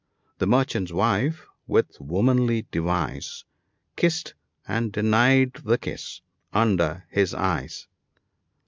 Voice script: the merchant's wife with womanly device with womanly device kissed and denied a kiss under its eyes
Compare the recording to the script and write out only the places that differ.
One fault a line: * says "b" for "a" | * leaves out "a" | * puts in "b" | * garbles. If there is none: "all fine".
* leaves out "with womanly device"
* says "the" for "a"
* says "his" for "its"